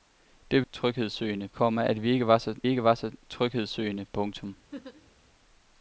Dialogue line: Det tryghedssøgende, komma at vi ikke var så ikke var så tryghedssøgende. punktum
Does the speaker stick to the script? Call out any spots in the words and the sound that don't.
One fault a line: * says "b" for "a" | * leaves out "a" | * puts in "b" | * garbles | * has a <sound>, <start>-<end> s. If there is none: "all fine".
* has a laugh, 4.7-5.1 s